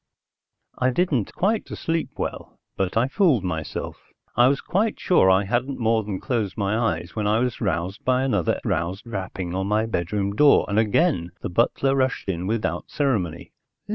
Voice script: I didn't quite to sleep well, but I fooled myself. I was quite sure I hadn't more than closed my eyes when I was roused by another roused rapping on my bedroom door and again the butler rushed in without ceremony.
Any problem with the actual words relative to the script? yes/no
no